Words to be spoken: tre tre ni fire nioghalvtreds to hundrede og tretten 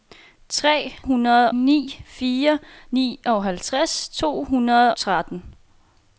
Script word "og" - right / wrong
wrong